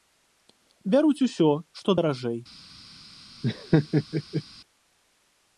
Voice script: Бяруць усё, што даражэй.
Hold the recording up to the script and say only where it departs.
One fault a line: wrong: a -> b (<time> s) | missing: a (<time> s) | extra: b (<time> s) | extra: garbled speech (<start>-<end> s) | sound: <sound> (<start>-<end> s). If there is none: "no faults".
sound: laugh (3.4-4.4 s)